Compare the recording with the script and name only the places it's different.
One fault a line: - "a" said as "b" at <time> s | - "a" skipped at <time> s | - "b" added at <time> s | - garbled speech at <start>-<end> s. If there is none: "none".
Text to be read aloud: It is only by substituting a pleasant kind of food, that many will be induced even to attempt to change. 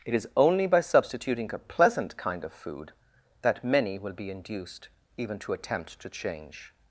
none